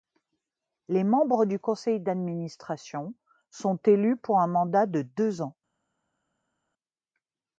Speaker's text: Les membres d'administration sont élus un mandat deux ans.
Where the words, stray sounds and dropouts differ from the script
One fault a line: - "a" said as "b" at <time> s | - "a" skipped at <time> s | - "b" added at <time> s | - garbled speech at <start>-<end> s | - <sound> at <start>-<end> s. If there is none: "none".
- "du Conseil" added at 1.4 s
- "pour" added at 4.2 s
- "de" added at 4.9 s